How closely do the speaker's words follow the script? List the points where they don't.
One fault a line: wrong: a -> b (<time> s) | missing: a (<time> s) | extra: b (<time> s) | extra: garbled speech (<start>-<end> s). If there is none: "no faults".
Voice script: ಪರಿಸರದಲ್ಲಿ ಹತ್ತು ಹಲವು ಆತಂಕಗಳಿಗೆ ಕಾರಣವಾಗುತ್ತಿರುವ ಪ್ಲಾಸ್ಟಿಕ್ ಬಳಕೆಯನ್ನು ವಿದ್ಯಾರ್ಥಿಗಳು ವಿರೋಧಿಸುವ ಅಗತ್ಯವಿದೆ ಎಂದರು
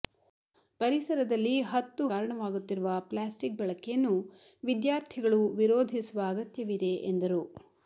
missing: ಹಲವು ಆತಂಕಗಳಿಗೆ (2.0 s)